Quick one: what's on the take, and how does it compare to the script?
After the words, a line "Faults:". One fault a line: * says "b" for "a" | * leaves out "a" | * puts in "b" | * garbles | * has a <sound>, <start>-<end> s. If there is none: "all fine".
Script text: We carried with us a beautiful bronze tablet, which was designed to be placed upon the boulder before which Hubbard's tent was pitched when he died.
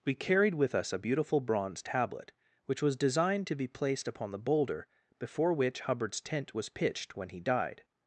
We carried with us a beautiful bronze tablet, which was designed to be placed upon the boulder before which Hubbard's tent was pitched when he died.
Faults:
all fine